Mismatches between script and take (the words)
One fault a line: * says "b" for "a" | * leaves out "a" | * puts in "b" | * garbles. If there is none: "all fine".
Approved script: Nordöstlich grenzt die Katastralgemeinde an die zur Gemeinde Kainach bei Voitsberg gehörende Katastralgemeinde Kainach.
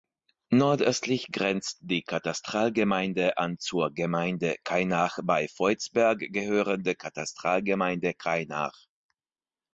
* leaves out "die"